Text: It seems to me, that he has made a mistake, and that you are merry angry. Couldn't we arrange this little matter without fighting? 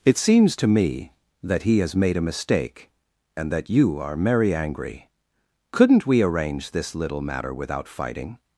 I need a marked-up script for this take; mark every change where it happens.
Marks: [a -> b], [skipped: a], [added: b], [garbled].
It seems to me, that he has made a mistake, and that you are merry angry. Couldn't we arrange this little matter without fighting?